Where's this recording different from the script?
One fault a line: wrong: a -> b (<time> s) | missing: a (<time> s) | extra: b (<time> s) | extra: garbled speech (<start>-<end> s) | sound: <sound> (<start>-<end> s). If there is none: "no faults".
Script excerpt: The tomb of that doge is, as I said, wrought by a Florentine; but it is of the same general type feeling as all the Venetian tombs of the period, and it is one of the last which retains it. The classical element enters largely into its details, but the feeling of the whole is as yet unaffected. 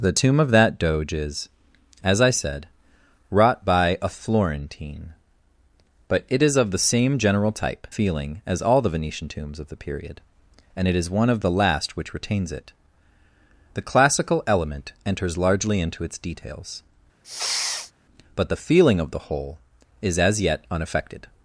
sound: sniff (17.2-17.9 s)